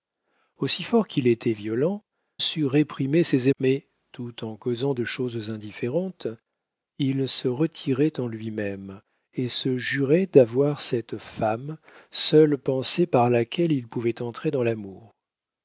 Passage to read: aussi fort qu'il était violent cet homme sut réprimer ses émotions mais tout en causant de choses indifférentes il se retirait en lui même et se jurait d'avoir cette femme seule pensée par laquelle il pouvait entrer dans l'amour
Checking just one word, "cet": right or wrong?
wrong